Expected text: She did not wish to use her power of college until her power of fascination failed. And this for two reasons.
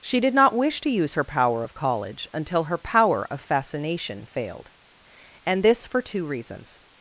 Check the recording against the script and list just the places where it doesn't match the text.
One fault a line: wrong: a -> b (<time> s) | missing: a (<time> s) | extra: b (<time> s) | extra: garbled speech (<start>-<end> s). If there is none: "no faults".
no faults